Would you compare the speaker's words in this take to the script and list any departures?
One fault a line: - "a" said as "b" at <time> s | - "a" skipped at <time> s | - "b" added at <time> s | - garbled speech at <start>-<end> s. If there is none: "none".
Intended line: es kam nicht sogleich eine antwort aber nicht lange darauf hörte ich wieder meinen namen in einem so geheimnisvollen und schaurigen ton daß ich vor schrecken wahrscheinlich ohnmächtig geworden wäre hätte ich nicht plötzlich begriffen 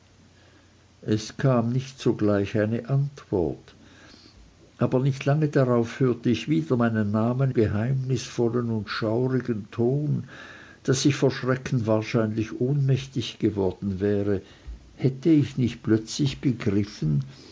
- "in einem so" skipped at 7.5 s